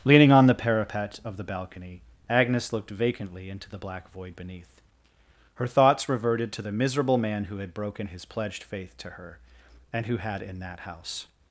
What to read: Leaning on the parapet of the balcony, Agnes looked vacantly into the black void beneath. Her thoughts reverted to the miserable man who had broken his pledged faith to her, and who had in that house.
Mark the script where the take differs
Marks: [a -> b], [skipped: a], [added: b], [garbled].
Leaning on the parapet of the balcony, Agnes looked vacantly into the black void beneath. Her thoughts reverted to the miserable man who had broken his pledged faith to her, and who had in that house.